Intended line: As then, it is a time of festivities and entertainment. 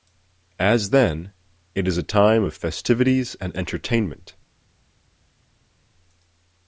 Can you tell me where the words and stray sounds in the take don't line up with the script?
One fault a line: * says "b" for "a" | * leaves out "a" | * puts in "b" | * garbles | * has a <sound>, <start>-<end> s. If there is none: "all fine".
all fine